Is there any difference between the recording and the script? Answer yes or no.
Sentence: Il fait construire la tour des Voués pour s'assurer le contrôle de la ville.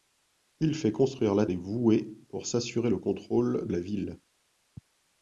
yes